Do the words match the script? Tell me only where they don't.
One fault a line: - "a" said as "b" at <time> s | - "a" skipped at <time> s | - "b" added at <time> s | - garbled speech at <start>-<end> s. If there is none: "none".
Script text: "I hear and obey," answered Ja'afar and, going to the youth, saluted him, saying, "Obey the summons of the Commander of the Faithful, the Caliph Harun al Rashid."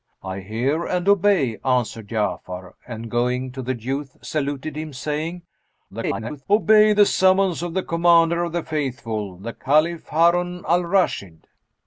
- garbled speech at 5.9-6.5 s